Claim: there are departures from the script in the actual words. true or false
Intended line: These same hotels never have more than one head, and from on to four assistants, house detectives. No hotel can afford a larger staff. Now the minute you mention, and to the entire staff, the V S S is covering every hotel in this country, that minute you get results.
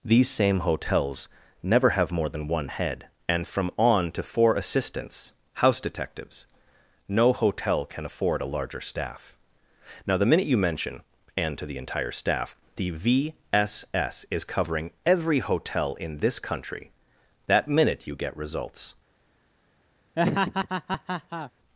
false